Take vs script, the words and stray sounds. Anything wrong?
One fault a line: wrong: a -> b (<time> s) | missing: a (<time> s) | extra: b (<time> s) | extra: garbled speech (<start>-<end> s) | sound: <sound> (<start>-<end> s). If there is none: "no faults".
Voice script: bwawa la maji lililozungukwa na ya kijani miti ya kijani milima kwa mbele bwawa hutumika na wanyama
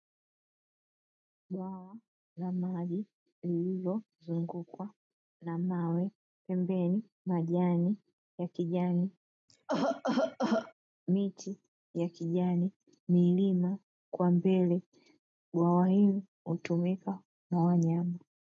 extra: mawe pembeni majani (5.6 s)
sound: cough (9.5-10.7 s)
extra: hili (15.9 s)